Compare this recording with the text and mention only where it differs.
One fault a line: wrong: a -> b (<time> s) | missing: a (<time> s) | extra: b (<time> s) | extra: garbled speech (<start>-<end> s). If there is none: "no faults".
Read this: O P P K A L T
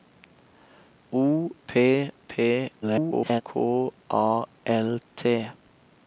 extra: garbled speech (2.8-3.4 s)